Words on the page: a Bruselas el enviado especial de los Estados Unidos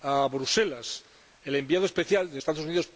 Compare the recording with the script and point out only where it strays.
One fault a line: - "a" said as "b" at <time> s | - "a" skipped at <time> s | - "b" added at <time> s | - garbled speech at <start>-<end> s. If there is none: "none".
- "los" skipped at 2.4 s